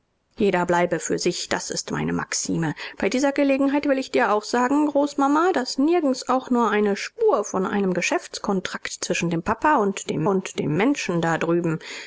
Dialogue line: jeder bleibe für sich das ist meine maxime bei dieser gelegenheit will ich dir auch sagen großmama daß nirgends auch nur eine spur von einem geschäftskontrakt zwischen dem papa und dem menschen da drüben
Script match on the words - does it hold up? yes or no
no